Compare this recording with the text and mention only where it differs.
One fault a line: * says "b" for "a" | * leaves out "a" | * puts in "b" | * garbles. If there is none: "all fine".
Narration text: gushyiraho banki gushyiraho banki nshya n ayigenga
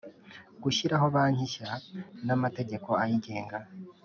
* leaves out "gushyiraho banki"
* puts in "amategeko"